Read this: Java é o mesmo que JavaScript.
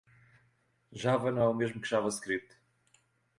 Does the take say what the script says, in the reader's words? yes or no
no